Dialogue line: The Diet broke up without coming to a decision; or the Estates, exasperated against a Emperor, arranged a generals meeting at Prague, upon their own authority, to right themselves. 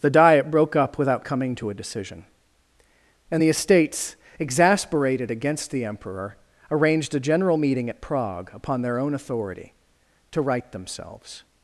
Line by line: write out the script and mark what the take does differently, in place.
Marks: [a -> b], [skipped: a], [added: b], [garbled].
The Diet broke up without coming to a decision; [or -> and] the Estates, exasperated against [a -> the] Emperor, arranged a [generals -> general] meeting at Prague, upon their own authority, to right themselves.